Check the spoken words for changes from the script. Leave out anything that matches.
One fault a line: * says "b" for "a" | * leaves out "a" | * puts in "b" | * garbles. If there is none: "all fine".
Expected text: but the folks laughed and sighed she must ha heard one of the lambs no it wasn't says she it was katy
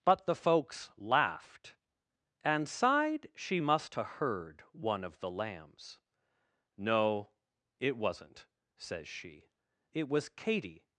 all fine